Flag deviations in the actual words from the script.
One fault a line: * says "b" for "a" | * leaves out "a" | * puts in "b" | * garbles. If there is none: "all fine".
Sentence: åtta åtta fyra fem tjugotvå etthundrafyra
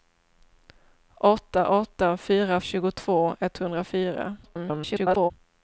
* leaves out "fem"
* garbles